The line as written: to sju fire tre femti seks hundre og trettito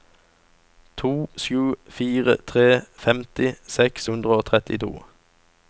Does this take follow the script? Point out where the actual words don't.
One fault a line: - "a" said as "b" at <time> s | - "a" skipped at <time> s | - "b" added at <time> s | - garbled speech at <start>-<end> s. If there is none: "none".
none